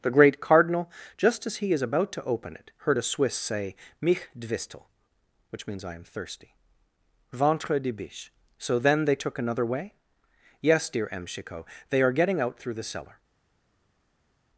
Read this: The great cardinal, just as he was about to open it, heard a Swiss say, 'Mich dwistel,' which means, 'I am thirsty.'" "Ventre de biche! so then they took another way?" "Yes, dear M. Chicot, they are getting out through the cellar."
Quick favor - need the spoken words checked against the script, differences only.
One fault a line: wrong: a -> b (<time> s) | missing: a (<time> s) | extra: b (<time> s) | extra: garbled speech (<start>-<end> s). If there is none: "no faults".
wrong: was -> is (1.7 s)